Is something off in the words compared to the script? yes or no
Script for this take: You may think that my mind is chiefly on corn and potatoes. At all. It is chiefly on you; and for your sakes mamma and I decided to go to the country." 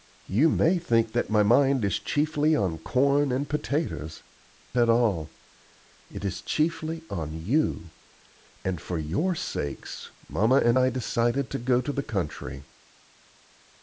no